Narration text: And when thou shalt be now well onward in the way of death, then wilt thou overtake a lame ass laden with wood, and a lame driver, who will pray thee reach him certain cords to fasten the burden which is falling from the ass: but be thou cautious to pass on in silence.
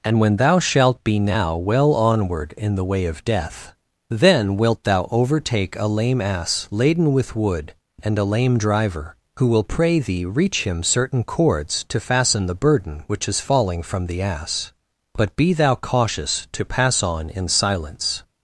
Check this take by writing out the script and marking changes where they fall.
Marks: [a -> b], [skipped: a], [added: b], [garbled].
And when thou shalt be now well onward in the way of death, then wilt thou overtake a lame ass laden with wood, and a lame driver, who will pray thee reach him certain cords to fasten the burden which is falling from the ass: but be thou cautious to pass on in silence.